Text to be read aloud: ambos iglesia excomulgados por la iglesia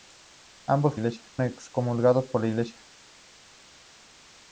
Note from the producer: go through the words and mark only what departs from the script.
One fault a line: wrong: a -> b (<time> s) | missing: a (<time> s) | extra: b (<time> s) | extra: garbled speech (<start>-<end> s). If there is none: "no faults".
no faults